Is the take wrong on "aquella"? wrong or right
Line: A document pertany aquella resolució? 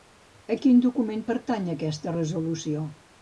wrong